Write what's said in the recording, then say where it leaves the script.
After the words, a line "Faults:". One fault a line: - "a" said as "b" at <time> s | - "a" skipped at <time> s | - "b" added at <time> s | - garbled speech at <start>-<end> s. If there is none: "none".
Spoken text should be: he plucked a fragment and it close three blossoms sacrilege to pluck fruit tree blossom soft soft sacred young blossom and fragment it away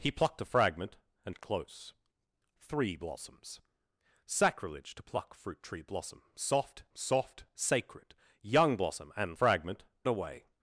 he plucked a fragment and it close three blossoms sacrilege to pluck fruit tree blossom soft soft sacred young blossom and fragment it away
Faults:
none